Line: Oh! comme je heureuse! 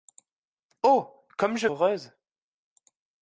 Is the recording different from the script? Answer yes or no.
no